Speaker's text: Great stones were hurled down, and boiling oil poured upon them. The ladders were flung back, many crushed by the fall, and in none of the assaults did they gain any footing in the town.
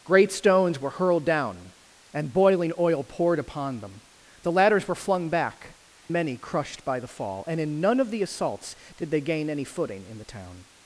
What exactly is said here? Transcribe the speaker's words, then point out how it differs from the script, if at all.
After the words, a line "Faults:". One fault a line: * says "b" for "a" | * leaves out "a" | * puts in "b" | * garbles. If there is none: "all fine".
Great stones were hurled down, and boiling oil poured upon them. The ladders were flung back, many crushed by the fall, and in none of the assaults did they gain any footing in the town.
Faults:
all fine